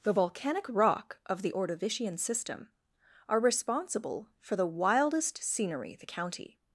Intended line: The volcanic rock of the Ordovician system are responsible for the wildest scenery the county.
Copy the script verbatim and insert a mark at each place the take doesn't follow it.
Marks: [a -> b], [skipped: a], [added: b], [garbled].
The volcanic rock of the Ordovician system are responsible for the wildest scenery the county.